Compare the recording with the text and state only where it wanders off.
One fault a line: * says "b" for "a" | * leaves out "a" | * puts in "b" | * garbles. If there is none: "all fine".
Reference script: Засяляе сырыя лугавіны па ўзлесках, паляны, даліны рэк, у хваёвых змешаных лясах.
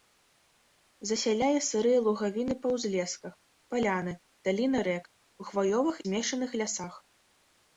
all fine